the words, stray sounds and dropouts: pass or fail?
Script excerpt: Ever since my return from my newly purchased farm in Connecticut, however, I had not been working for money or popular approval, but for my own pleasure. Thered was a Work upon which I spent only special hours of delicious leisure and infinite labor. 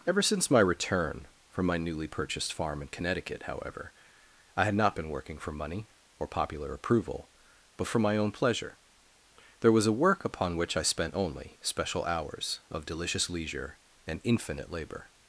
fail